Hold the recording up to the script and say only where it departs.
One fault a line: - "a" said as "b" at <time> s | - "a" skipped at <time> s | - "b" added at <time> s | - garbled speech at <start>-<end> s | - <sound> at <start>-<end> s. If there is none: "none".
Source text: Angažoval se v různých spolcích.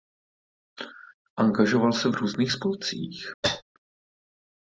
- cough at 3.4-3.6 s